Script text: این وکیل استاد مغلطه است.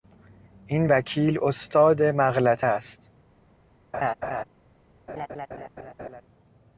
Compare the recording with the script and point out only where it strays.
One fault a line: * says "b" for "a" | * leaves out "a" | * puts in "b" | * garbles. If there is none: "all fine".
all fine